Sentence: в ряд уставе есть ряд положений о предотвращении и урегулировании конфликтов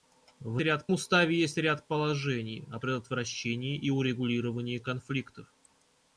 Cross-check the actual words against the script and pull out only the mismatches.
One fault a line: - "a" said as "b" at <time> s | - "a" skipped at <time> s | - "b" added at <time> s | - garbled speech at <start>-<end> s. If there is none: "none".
none